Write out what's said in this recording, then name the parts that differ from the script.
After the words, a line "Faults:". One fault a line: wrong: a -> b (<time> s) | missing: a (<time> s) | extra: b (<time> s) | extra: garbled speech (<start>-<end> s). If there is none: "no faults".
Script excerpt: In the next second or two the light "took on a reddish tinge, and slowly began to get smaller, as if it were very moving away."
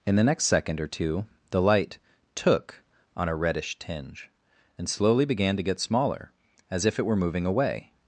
In the next second or two the light "took on a reddish tinge, and slowly began to get smaller, as if it were moving away."
Faults:
missing: very (7.1 s)